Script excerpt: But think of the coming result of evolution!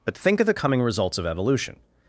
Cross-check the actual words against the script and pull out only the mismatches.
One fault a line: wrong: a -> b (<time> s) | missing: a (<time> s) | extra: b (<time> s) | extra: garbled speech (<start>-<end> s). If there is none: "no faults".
wrong: result -> results (0.8 s)